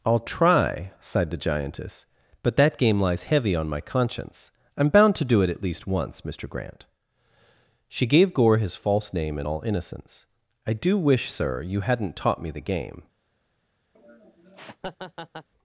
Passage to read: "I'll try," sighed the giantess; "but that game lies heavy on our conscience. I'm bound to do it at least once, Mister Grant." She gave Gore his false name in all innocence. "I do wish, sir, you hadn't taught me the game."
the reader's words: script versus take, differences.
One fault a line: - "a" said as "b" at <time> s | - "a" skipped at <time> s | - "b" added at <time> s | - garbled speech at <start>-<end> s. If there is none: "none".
- "our" said as "my" at 3.7 s